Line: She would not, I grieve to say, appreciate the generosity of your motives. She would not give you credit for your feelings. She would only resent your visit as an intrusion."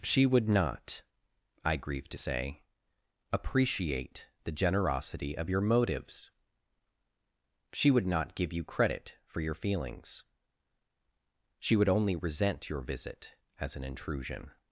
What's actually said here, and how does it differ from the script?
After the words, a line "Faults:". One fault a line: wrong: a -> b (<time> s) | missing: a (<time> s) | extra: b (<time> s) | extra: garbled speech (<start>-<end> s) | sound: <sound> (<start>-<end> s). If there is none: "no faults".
She would not, I grieve to say, appreciate the generosity of your motives. She would not give you credit for your feelings. She would only resent your visit as an intrusion."
Faults:
no faults